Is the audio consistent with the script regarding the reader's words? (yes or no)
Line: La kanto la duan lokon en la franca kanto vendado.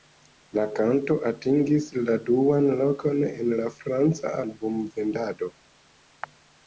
no